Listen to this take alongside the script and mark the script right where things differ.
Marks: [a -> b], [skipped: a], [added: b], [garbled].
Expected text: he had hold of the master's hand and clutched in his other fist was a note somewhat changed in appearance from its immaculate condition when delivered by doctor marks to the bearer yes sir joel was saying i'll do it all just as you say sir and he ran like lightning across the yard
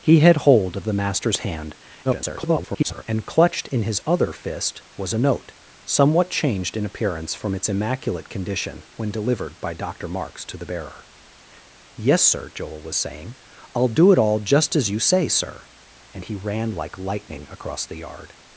he had hold of the master's hand [garbled] and clutched in his other fist was a note somewhat changed in appearance from its immaculate condition when delivered by doctor marks to the bearer yes sir joel was saying i'll do it all just as you say sir and he ran like lightning across the yard